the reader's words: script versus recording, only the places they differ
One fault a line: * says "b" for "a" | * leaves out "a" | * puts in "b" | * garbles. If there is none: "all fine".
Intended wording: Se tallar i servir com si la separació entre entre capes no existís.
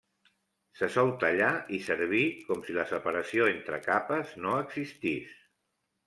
* puts in "sol"
* leaves out "entre"